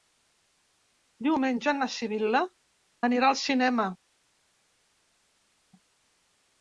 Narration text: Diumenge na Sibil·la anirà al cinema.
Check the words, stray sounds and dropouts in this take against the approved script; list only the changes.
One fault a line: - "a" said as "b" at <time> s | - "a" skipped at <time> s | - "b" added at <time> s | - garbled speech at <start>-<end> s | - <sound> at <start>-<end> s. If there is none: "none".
none